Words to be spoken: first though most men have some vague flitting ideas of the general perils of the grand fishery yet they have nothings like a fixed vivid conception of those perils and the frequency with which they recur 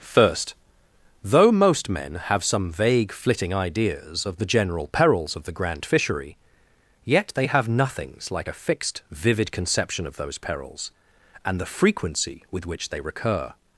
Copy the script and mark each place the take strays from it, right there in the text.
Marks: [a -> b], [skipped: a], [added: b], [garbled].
first though most men have some vague flitting ideas of the general perils of the grand fishery yet they have nothings like a fixed vivid conception of those perils and the frequency with which they recur